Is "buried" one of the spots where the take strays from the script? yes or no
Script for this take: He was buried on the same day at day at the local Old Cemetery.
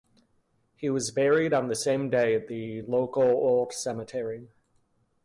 no